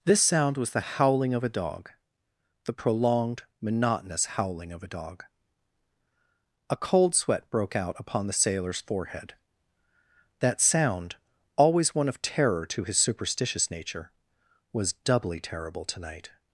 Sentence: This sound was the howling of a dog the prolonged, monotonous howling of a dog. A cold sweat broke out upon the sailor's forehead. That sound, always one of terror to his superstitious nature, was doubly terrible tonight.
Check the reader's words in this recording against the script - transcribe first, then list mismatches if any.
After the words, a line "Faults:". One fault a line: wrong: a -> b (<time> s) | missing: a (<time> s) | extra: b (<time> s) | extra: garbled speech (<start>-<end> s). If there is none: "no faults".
This sound was the howling of a dog the prolonged, monotonous howling of a dog. A cold sweat broke out upon the sailor's forehead. That sound, always one of terror to his superstitious nature, was doubly terrible tonight.
Faults:
no faults